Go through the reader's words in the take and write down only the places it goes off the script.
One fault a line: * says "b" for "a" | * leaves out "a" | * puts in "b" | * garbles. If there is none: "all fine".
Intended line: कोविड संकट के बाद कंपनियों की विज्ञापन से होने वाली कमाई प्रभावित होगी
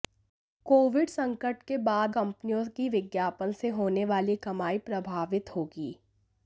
all fine